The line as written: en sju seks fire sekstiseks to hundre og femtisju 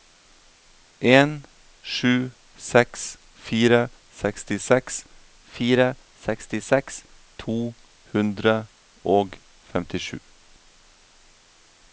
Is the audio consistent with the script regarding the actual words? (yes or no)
no